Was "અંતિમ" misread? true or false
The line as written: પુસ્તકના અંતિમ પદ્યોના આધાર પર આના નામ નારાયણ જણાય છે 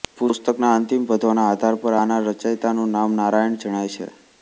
false